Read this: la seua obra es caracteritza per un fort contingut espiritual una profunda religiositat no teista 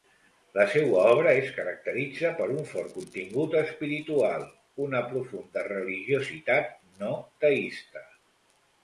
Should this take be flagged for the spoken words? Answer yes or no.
no